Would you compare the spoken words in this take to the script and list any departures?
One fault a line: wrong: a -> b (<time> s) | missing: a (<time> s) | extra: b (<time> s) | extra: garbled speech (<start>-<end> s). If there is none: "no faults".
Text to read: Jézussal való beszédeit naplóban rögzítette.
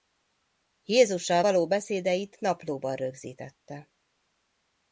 no faults